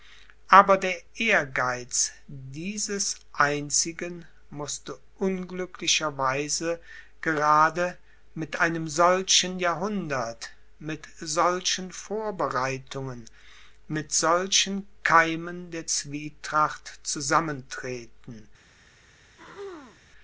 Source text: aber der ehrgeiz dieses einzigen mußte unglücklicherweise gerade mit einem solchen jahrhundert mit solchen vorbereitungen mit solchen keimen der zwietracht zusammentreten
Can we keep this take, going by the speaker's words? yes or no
yes